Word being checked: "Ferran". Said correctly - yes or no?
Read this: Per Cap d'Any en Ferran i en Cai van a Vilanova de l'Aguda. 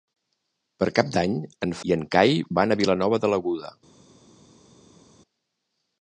no